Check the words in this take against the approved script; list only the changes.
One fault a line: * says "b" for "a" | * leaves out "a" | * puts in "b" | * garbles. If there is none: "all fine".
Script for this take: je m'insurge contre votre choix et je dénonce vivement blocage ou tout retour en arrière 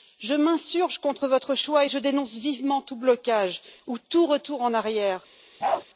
* puts in "tout"